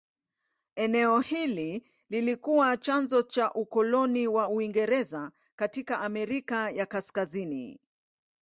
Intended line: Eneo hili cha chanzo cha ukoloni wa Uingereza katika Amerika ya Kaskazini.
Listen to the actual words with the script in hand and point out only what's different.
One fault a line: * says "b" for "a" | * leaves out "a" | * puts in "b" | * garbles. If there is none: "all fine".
* says "lilikuwa" for "cha"